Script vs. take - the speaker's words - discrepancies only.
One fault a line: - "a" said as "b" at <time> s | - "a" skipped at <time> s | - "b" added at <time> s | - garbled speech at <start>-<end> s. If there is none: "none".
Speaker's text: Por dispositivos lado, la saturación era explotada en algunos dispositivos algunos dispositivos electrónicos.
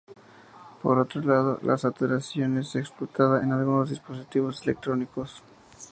- "dispositivos" said as "otro" at 1.0 s
- "era" said as "es" at 2.6 s
- "algunos dispositivos" skipped at 4.6 s